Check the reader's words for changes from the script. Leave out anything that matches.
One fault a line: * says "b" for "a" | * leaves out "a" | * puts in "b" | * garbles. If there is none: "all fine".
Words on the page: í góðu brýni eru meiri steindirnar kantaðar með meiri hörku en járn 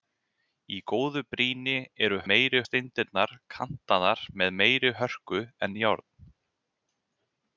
all fine